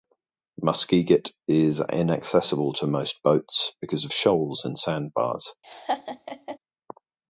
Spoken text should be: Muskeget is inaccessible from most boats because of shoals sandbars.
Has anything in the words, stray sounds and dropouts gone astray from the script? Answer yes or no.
yes